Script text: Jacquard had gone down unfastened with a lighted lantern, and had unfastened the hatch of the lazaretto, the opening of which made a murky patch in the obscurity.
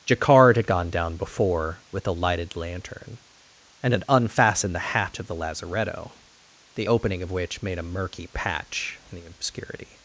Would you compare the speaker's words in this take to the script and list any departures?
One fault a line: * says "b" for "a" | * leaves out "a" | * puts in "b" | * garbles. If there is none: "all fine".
* says "before" for "unfastened"